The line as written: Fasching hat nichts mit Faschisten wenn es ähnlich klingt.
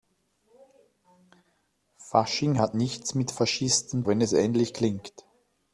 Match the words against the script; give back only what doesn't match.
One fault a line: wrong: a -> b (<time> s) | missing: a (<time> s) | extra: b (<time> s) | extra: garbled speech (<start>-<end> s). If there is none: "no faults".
no faults